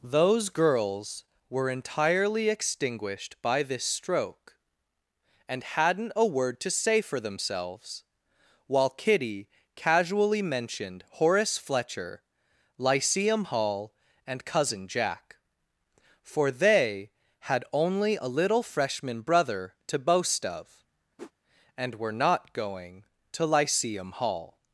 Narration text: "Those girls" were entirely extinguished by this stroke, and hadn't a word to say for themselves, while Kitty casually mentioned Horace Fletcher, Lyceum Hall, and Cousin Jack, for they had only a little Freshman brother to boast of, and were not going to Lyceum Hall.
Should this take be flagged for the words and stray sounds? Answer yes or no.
yes